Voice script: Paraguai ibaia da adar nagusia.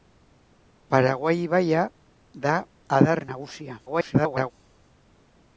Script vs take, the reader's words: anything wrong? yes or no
yes